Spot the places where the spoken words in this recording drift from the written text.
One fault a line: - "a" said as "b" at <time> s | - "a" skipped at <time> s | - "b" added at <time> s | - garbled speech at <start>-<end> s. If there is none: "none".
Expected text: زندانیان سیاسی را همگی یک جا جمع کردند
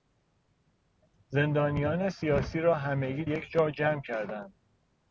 none